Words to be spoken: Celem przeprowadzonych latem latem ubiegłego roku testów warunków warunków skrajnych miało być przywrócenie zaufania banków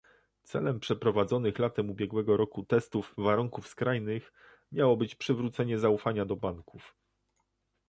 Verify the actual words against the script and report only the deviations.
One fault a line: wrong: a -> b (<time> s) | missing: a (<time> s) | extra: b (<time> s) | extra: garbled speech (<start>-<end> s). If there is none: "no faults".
missing: latem (1.9 s)
missing: warunków (3.7 s)
extra: do (6.2 s)